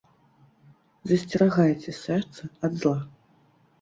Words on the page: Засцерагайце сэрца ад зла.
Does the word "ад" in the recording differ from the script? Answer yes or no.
no